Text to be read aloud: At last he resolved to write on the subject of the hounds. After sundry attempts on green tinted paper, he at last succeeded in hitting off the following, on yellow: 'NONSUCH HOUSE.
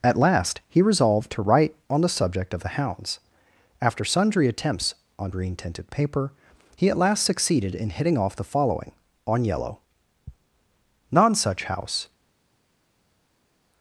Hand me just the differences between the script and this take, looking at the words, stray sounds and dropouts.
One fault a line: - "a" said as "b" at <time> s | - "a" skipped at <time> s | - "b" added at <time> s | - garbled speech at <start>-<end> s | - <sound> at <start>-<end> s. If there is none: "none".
none